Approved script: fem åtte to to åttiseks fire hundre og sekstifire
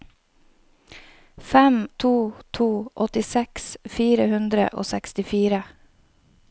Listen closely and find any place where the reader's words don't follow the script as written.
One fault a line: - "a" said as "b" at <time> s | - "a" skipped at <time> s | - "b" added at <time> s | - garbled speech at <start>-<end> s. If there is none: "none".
- "åtte" skipped at 1.9 s